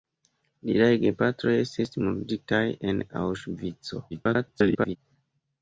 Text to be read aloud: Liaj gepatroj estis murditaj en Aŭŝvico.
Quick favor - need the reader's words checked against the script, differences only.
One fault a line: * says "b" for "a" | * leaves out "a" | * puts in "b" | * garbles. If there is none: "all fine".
* garbles